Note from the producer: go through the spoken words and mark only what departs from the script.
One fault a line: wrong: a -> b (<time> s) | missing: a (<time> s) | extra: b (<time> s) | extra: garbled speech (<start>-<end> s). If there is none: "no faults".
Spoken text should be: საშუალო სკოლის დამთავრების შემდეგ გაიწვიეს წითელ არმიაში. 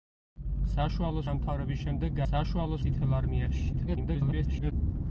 missing: სკოლის (1.2 s)
wrong: გაიწვიეს -> საშუალო (2.3 s)
extra: garbled speech (3.7-4.7 s)